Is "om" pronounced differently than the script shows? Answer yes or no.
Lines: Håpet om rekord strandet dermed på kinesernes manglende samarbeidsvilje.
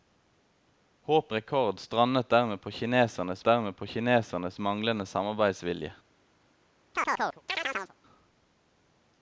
yes